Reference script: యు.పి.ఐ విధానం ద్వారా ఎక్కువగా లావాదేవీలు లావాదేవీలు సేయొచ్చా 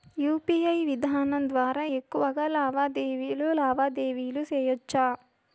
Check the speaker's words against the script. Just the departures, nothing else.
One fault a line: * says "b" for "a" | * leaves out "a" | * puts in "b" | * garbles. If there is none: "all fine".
all fine